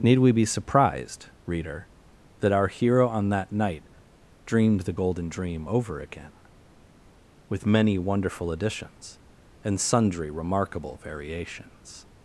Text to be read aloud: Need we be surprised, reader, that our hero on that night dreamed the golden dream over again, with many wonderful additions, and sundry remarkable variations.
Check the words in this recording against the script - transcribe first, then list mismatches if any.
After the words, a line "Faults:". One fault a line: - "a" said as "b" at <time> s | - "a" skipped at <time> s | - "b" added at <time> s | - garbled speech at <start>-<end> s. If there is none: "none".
Need we be surprised, reader, that our hero on that night dreamed the golden dream over again, with many wonderful additions, and sundry remarkable variations.
Faults:
none